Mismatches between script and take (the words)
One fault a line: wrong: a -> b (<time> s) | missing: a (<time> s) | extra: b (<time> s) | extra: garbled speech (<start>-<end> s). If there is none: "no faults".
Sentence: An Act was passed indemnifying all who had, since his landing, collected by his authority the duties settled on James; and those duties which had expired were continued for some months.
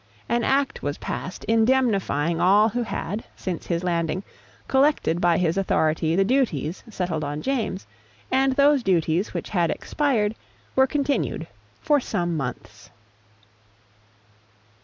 no faults